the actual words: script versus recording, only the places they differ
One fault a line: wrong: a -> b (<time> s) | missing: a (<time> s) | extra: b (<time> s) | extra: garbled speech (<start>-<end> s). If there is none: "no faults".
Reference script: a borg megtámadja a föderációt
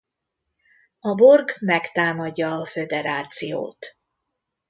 no faults